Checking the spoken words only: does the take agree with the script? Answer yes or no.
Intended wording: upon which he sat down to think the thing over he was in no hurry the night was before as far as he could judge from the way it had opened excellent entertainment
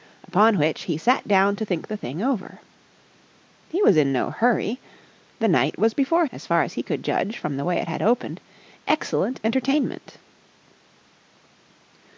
yes